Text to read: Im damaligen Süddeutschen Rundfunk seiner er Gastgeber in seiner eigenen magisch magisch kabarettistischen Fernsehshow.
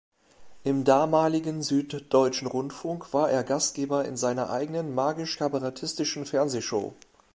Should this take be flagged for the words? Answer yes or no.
yes